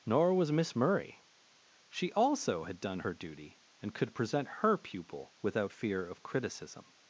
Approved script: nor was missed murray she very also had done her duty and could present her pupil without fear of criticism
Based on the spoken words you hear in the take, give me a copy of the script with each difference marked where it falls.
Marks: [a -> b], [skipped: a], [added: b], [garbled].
nor was [missed -> miss] murray she [skipped: very] also had done her duty and could present her pupil without fear of criticism